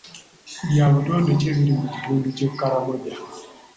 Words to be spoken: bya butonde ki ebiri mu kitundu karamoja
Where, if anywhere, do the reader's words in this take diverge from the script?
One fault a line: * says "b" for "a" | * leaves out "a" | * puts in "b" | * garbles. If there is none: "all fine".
* puts in "ky'e"